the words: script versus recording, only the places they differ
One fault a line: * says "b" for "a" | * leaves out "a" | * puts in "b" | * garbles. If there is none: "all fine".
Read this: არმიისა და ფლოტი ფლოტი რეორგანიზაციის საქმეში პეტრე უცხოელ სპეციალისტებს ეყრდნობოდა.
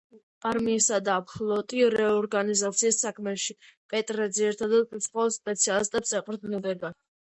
* leaves out "ფლოტი"
* puts in "ძირითადად"